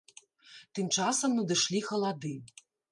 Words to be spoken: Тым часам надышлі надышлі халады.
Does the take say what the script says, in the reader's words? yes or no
no